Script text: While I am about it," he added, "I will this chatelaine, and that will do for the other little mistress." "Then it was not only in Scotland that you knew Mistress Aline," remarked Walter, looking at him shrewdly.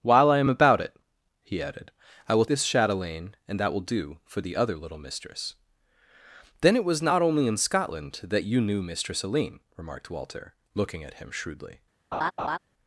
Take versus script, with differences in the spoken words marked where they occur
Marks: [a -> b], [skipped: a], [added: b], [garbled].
While I am about it," he added, "I will this chatelaine, and that will do for the other little mistress." "Then it was not only in Scotland that you knew Mistress Aline," remarked Walter, looking at him shrewdly.